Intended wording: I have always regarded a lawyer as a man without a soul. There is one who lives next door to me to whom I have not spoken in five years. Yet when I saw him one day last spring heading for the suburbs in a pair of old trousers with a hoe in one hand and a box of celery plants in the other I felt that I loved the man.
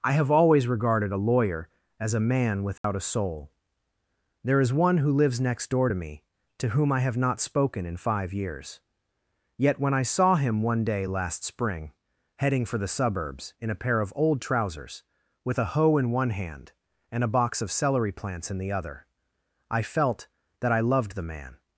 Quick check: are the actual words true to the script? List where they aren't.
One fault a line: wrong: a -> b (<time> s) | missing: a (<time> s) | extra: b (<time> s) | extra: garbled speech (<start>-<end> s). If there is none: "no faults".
no faults